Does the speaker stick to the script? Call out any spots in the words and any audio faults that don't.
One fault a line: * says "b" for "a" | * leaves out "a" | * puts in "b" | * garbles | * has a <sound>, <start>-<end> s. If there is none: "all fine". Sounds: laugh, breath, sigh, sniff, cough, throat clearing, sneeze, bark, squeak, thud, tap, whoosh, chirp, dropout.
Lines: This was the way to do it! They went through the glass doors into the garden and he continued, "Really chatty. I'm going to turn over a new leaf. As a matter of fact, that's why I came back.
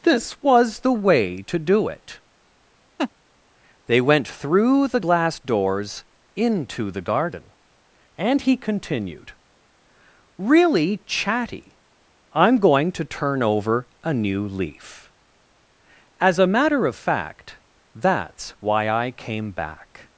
* has a laugh, 3.0-3.1 s